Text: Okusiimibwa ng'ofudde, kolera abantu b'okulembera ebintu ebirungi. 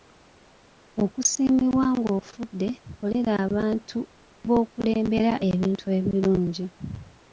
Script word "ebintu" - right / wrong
right